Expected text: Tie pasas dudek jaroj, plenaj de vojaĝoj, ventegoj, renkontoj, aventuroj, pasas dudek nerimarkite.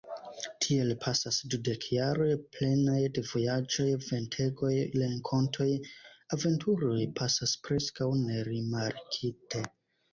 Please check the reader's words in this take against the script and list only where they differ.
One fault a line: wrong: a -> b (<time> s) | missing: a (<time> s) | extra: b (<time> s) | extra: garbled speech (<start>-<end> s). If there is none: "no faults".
wrong: Tie -> Tiel (0.7 s)
wrong: dudek -> preskaŭ (7.7 s)